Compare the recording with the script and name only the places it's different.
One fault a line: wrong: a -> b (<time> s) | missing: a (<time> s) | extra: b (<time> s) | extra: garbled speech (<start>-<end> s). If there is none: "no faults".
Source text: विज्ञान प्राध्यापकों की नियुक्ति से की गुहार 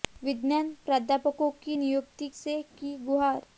no faults